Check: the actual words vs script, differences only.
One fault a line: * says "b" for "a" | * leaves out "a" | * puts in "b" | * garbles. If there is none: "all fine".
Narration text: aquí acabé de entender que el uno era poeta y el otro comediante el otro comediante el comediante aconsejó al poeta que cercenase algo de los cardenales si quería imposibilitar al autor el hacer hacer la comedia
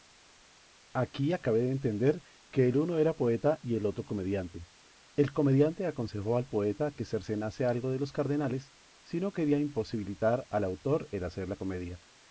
* leaves out "otro"
* leaves out "el comediante"
* puts in "no"
* leaves out "hacer"